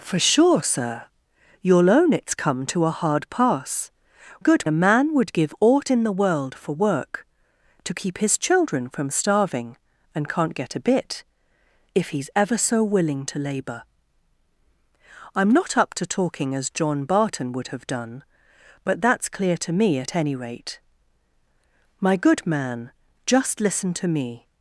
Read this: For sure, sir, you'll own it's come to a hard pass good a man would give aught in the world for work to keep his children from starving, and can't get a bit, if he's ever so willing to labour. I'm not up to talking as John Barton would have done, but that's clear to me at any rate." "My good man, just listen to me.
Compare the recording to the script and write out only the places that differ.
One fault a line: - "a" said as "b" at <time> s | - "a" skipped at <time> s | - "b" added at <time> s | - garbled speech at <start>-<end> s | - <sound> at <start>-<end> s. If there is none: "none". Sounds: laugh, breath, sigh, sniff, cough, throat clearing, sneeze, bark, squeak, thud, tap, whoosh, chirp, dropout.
none